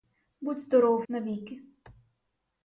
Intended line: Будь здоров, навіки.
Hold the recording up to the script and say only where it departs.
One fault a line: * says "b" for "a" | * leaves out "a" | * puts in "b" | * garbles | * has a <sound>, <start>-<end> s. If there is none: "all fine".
all fine